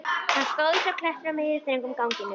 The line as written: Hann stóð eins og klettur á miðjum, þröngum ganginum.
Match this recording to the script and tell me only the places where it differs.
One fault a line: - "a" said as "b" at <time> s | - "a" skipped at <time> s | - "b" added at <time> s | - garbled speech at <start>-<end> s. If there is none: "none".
none